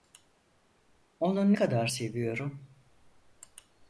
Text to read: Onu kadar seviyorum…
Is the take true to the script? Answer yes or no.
yes